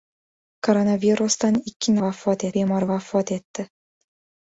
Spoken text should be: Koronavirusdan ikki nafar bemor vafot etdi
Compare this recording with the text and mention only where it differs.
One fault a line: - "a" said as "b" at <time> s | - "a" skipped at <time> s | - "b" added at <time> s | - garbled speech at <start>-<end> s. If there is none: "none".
- "nafar" said as "vafot" at 2.1 s